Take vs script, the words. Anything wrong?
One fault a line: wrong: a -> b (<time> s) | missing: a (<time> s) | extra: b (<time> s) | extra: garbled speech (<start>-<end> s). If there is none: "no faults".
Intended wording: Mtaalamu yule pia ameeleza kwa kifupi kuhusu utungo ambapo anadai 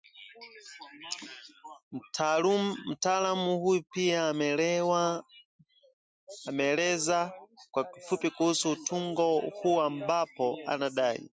wrong: yule -> huyu (3.6 s)
extra: huu (9.4 s)